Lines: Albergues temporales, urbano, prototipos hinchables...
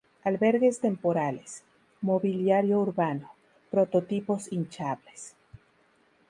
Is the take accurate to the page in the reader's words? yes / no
no